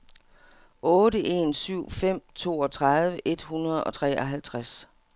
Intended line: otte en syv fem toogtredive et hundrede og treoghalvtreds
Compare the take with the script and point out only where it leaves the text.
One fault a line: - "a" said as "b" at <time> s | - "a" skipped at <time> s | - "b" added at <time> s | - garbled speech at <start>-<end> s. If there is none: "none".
none